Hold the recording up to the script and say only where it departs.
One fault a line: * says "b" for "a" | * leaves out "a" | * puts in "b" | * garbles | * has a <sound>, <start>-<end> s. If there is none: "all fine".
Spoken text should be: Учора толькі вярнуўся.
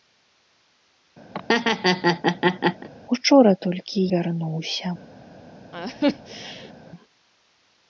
* has a laugh, 1.3-2.9 s
* has a laugh, 5.7-6.7 s